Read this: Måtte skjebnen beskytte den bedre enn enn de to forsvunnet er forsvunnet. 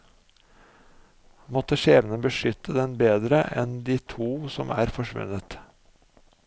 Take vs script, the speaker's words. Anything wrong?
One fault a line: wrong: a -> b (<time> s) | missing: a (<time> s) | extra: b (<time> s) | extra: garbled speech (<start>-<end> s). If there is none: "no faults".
missing: enn (3.8 s)
wrong: forsvunnet -> som (4.6 s)